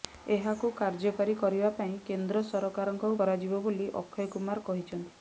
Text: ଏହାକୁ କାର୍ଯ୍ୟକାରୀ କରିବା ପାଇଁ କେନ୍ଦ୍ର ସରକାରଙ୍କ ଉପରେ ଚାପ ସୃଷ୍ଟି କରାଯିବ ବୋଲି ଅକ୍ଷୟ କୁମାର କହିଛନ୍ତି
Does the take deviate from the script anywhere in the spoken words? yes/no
yes